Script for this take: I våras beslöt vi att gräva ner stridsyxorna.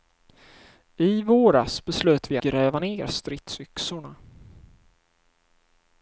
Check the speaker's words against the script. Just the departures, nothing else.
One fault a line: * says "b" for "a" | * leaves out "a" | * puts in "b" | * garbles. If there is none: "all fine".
* leaves out "att"